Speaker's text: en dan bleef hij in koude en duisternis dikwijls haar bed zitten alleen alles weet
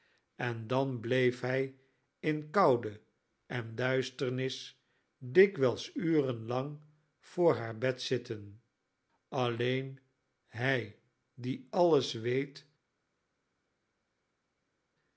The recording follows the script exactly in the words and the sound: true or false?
false